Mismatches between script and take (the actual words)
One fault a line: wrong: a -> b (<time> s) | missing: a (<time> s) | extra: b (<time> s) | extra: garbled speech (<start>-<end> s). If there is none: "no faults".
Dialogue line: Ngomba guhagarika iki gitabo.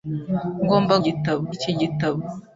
wrong: guhagarika -> gitabo (1.0 s)